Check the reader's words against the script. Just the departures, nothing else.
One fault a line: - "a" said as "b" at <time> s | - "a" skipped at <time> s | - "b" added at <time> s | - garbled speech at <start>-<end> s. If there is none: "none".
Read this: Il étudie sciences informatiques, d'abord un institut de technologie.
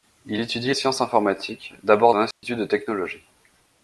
none